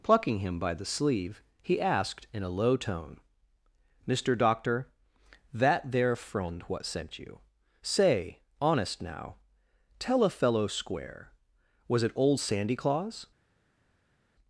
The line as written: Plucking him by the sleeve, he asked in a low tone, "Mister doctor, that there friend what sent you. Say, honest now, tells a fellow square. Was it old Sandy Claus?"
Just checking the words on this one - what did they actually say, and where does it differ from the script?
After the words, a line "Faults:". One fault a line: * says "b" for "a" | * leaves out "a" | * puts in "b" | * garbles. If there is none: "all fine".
Plucking him by the sleeve, he asked in a low tone, "Mister doctor, that there friend what sent you. Say, honest now, tell a fellow square. Was it old Sandy Claus?"
Faults:
* says "tell" for "tells"